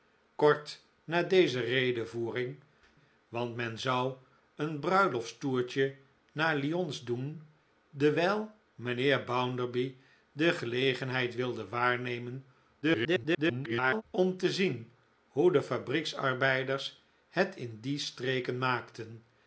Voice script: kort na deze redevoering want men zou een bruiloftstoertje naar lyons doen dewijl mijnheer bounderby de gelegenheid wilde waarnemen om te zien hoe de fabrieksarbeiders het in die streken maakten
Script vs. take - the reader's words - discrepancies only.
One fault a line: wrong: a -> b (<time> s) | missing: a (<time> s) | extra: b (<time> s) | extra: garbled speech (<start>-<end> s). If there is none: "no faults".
extra: garbled speech (12.8-14.0 s)